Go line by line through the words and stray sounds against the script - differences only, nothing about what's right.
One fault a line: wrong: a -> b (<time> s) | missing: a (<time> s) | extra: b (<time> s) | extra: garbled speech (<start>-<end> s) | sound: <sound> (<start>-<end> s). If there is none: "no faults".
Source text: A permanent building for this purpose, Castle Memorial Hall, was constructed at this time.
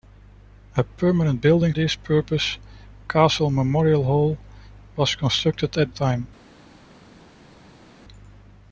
missing: for (1.7 s)
missing: this (5.9 s)